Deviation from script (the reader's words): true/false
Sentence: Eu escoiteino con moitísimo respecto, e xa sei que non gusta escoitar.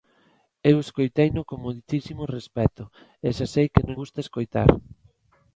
false